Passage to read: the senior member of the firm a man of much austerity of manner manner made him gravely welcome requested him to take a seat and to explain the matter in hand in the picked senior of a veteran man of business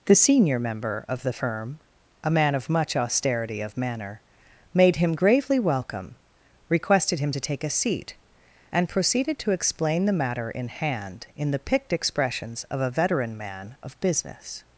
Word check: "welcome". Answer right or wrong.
right